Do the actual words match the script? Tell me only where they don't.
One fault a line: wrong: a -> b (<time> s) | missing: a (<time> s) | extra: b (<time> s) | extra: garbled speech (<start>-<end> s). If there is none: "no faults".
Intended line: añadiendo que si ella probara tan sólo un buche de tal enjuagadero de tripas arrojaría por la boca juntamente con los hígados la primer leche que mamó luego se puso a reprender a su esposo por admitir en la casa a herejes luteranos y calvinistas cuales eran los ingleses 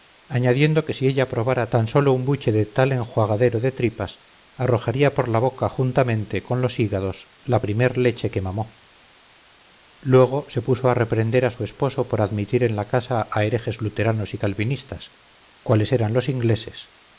no faults